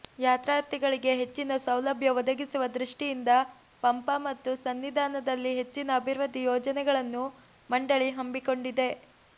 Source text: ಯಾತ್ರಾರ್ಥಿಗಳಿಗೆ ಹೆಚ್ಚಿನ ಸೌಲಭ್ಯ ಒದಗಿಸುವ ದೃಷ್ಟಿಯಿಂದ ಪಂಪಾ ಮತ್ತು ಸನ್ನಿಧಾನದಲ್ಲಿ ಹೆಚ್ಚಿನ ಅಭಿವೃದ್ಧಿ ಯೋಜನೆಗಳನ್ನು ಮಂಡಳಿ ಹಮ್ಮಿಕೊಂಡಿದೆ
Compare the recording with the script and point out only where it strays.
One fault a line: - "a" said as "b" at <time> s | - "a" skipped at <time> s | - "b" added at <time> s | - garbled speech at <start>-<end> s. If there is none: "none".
none